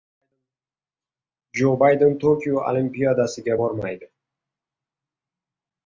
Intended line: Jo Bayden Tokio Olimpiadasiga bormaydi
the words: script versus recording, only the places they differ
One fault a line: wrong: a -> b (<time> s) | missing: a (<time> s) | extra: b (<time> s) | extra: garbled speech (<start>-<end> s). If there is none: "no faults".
no faults